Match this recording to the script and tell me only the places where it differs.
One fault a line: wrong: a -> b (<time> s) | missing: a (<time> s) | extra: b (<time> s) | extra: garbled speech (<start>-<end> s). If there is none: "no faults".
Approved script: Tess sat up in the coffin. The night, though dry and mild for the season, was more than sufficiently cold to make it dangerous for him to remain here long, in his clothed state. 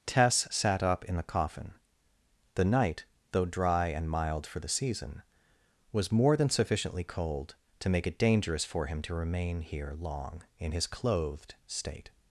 no faults